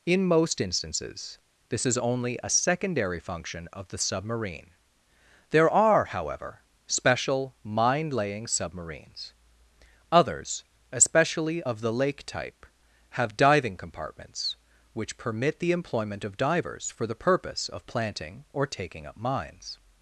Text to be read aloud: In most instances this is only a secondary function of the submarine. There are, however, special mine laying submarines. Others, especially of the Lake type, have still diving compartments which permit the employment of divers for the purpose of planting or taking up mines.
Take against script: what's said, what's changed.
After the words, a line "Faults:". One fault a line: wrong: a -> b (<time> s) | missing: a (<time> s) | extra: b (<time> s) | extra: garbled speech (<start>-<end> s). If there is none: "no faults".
In most instances this is only a secondary function of the submarine. There are, however, special mine laying submarines. Others, especially of the Lake type, have diving compartments which permit the employment of divers for the purpose of planting or taking up mines.
Faults:
missing: still (13.4 s)